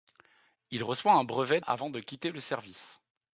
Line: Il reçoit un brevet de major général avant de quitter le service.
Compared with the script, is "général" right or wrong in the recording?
wrong